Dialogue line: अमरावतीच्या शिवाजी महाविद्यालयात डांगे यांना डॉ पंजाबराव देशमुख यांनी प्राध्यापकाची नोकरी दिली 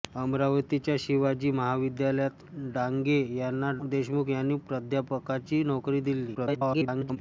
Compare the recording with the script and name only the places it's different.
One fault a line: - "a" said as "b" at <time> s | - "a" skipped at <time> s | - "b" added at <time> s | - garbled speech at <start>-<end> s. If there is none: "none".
- "डॉ पंजाबराव" skipped at 3.7 s
- garbled speech at 6.3-7.2 s